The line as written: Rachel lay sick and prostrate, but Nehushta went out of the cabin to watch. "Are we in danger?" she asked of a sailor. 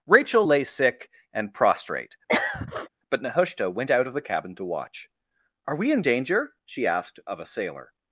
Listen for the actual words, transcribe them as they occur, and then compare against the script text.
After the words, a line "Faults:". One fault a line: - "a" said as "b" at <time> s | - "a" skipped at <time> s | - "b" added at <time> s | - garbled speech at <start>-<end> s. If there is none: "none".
Rachel lay sick and prostrate, but Nehushta went out of the cabin to watch. "Are we in danger?" she asked of a sailor.
Faults:
none